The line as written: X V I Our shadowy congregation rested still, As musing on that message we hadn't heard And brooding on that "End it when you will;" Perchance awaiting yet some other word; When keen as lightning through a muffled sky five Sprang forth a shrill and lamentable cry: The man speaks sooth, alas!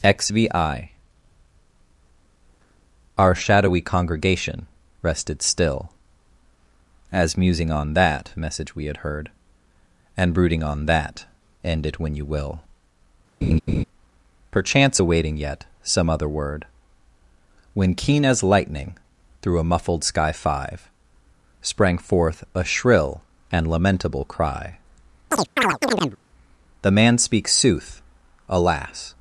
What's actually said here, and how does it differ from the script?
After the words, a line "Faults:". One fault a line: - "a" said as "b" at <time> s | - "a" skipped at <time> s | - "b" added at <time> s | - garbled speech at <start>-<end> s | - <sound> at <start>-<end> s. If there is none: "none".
X V I Our shadowy congregation rested still, As musing on that message we had heard And brooding on that "End it when you will;" Perchance awaiting yet some other word; When keen as lightning through a muffled sky five Sprang forth a shrill and lamentable cry: The man speaks sooth, alas!
Faults:
- "hadn't" said as "had" at 8.8 s
- laugh at 13.4-13.8 s
- chirp at 25.3-26.2 s